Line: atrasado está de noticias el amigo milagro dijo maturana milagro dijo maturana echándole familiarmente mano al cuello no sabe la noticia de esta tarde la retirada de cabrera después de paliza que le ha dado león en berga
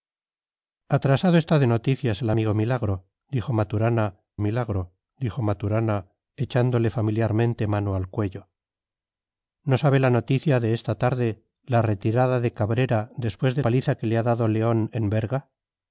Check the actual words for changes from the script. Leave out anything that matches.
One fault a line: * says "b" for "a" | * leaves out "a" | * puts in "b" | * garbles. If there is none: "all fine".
all fine